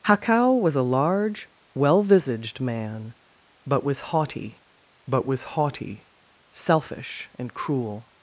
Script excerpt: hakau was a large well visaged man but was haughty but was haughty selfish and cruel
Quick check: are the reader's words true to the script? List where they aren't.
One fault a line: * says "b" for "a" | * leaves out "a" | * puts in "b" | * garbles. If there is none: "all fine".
all fine